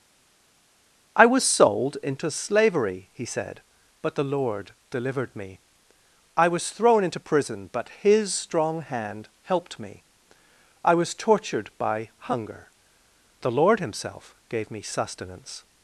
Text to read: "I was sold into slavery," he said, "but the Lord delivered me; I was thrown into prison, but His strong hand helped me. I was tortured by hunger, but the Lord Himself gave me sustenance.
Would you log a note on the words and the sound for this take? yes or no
yes